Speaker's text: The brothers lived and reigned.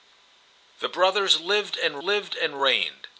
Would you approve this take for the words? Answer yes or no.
no